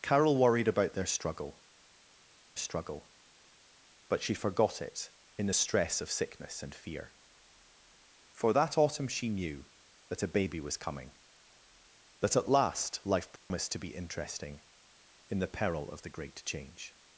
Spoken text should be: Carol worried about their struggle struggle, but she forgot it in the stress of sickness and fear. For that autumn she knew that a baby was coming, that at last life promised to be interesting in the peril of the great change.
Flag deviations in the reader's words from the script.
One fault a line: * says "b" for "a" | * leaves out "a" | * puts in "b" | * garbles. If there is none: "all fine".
all fine